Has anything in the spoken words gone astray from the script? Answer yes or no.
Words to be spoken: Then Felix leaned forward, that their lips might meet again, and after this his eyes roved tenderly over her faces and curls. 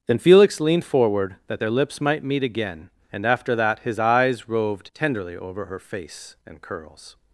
yes